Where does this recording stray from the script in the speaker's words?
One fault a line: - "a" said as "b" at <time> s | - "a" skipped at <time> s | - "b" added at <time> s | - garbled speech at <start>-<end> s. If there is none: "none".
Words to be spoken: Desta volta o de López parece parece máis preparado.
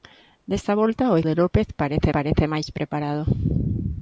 none